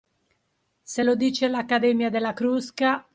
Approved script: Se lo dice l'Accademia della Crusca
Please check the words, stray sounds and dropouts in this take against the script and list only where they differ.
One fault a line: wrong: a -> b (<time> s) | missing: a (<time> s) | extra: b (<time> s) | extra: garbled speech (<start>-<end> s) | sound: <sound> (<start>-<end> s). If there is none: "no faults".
no faults